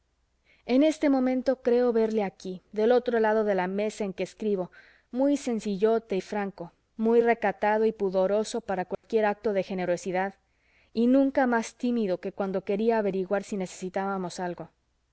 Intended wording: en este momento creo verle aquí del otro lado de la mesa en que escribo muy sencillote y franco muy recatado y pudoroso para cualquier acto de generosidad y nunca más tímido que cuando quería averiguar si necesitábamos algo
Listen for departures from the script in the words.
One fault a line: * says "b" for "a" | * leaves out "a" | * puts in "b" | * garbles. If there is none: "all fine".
all fine